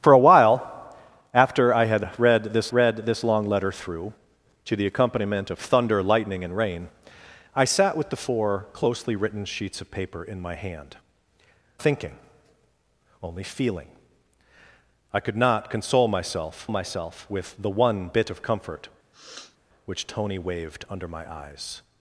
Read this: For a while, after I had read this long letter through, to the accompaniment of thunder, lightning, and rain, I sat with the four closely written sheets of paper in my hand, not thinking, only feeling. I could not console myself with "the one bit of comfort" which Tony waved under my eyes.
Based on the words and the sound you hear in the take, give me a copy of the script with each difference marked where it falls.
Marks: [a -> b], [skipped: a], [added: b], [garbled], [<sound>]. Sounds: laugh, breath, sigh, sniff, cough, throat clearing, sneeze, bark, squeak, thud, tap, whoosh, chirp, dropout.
For a while, after I had read this [added: read this] long letter through, to the accompaniment of thunder, lightning, and rain, I sat with the four closely written sheets of paper in my hand, [skipped: not] thinking, only feeling. I could not console myself [added: myself] with "the one bit of comfort" [sniff] which Tony waved under my eyes.